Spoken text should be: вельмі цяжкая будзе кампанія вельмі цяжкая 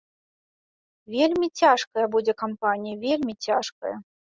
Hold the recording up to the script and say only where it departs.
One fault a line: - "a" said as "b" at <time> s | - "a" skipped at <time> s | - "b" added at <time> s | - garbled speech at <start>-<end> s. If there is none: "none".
none